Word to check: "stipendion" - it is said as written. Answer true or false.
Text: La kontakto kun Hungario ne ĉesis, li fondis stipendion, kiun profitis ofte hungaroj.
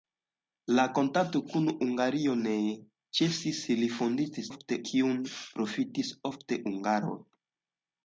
false